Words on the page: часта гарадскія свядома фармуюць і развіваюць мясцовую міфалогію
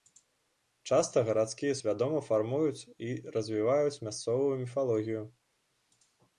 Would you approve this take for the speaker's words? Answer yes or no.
yes